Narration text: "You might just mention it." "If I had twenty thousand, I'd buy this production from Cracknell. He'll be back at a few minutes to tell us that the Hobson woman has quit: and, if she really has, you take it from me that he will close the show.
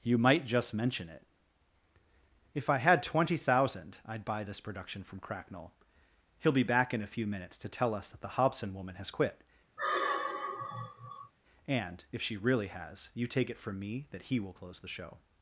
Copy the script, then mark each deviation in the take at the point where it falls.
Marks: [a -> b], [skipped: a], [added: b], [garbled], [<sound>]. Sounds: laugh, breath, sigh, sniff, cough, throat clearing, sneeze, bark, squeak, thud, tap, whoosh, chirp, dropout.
"You might just mention it." "If I had twenty thousand, I'd buy this production from Cracknell. He'll be back [at -> in] a few minutes to tell us that the Hobson woman has quit: [sigh] and, if she really has, you take it from me that he will close the show.